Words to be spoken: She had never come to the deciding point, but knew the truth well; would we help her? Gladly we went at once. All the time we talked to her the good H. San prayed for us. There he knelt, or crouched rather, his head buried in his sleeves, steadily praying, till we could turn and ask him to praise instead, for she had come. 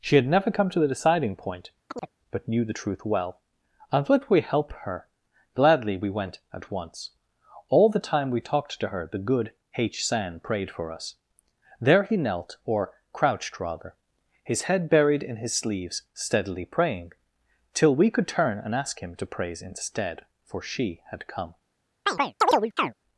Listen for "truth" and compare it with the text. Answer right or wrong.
right